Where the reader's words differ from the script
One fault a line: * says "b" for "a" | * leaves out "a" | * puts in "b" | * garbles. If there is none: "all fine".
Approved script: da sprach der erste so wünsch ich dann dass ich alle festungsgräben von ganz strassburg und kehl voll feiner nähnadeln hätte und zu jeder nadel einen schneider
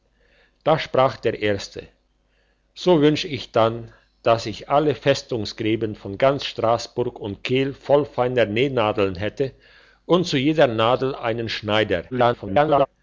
* garbles